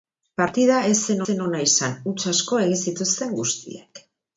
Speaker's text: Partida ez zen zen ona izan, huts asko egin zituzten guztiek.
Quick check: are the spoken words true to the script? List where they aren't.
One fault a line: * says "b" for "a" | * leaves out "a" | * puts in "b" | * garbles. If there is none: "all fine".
all fine